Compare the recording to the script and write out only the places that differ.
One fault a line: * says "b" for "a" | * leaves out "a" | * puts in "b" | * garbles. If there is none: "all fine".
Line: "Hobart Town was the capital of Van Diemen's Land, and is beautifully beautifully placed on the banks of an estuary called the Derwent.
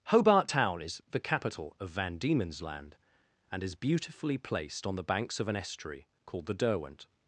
* says "is" for "was"
* leaves out "beautifully"